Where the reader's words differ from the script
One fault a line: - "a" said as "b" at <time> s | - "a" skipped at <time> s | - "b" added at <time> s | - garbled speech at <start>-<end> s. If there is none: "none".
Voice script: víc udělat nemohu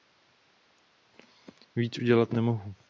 none